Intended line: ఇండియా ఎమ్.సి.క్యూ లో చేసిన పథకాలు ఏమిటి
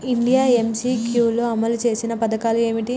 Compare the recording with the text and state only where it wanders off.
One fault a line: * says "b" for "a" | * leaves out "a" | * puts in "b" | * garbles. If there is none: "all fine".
* puts in "అమలు"